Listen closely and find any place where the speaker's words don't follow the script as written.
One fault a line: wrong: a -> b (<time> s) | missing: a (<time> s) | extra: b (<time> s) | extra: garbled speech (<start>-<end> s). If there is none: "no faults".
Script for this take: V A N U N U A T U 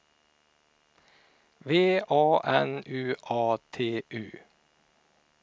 missing: N U (3.1 s)